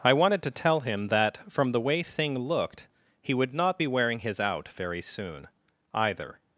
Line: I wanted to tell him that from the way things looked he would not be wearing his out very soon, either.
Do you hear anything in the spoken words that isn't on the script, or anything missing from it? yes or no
yes